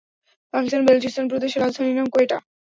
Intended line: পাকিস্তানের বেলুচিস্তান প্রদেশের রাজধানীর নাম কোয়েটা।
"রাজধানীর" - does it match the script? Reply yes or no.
yes